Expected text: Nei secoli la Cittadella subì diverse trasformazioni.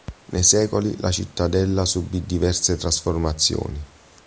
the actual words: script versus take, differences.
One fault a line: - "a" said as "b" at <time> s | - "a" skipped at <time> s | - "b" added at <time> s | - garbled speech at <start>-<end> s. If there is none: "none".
none